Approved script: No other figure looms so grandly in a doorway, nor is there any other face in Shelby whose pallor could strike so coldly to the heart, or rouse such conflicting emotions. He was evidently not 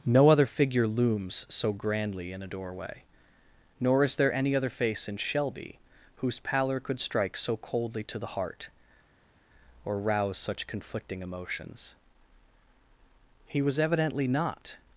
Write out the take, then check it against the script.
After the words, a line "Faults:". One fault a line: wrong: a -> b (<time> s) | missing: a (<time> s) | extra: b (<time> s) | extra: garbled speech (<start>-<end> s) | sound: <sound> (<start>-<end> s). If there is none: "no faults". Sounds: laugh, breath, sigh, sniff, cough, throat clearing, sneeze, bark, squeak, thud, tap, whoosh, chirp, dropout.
No other figure looms so grandly in a doorway, nor is there any other face in Shelby whose pallor could strike so coldly to the heart, or rouse such conflicting emotions. He was evidently not
Faults:
no faults